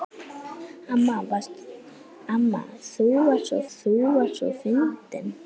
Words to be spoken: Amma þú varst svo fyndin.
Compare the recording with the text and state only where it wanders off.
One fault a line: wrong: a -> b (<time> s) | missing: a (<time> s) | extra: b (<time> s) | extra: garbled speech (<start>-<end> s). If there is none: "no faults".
extra: þú varst svo (3.8 s)